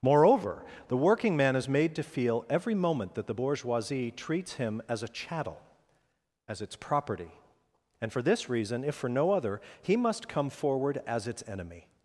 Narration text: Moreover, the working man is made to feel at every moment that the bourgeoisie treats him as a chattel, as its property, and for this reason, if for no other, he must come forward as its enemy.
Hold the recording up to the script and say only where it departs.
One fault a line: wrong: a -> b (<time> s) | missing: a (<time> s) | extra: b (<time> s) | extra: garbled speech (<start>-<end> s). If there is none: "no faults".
missing: at (2.5 s)